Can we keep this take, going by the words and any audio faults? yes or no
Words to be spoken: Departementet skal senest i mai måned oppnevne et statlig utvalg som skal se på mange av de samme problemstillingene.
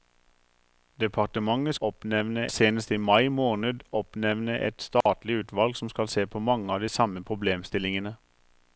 no